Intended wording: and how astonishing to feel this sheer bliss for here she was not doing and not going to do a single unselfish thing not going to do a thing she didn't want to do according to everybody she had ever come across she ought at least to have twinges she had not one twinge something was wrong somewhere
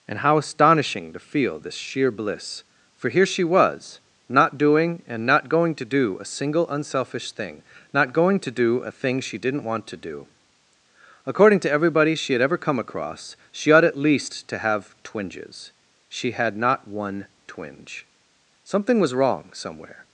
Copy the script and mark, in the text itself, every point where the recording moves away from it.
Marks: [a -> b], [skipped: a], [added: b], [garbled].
and how astonishing to feel this sheer bliss for here she was not doing and not going to do a single unselfish thing not going to do a thing she didn't want to do according to everybody she had ever come across she ought at least to have twinges she had not one twinge something was wrong somewhere